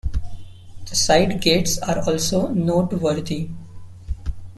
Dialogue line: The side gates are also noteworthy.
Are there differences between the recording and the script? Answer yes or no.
no